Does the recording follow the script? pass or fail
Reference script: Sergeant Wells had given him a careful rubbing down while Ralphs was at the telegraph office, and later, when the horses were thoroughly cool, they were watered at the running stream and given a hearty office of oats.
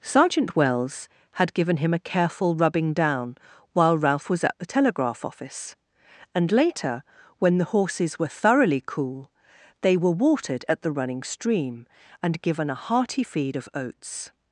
fail